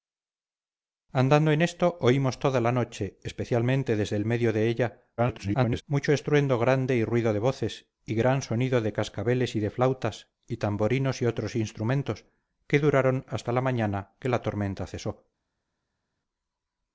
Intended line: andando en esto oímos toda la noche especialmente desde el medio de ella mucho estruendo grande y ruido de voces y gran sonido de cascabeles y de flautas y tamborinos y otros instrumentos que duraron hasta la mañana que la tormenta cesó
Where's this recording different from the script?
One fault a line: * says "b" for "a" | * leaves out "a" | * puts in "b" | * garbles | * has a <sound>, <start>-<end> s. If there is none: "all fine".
* garbles